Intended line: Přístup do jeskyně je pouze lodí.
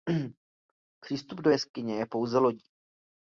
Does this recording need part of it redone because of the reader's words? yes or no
no